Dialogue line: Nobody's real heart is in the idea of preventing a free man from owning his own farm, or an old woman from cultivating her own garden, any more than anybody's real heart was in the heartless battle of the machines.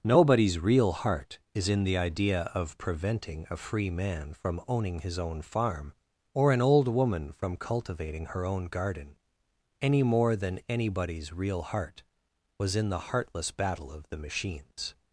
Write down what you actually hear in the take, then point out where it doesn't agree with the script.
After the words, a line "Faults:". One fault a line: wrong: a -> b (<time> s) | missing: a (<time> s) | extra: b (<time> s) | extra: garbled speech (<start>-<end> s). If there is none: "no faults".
Nobody's real heart is in the idea of preventing a free man from owning his own farm, or an old woman from cultivating her own garden, any more than anybody's real heart was in the heartless battle of the machines.
Faults:
no faults